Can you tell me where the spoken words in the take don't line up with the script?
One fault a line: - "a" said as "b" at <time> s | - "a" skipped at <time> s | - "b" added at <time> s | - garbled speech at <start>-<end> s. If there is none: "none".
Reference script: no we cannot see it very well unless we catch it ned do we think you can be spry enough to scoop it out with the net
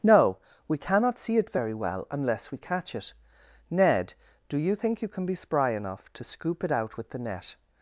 - "we" said as "you" at 4.6 s